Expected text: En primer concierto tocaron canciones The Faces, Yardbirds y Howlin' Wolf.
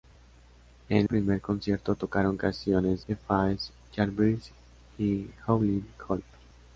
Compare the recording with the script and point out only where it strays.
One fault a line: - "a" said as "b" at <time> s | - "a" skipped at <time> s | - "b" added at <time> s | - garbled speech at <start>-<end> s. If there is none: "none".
none